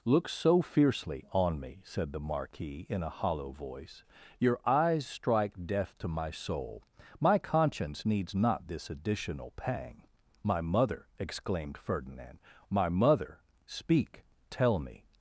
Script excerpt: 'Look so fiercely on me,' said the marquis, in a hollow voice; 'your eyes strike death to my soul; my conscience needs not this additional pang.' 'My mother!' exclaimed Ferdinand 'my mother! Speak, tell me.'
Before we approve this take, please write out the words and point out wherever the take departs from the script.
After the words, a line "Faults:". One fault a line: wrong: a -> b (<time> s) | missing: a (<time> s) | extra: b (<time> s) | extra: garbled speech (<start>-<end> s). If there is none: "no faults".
'Look so fiercely on me,' said the marquis, in a hollow voice; 'your eyes strike death to my soul; my conscience needs not this additional pang.' 'My mother!' exclaimed Ferdinand 'my mother! Speak, tell me.'
Faults:
no faults